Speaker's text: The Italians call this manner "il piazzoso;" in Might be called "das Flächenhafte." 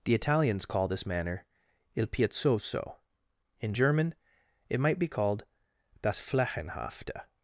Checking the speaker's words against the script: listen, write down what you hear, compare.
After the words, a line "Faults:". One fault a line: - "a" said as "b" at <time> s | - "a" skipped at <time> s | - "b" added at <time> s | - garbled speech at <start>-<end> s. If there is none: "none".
The Italians call this manner "il piazzoso;" in German it might be called "das Flächenhafte."
Faults:
- "German it" added at 3.7 s